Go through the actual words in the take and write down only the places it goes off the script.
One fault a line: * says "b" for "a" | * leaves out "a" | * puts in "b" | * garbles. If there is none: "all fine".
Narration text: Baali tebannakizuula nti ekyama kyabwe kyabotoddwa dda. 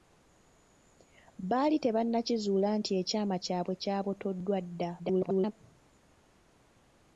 * garbles